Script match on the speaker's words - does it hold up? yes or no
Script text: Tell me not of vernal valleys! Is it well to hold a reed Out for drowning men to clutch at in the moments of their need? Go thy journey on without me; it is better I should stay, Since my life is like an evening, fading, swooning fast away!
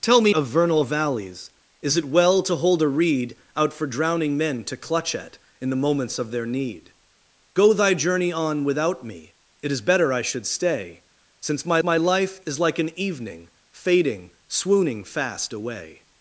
no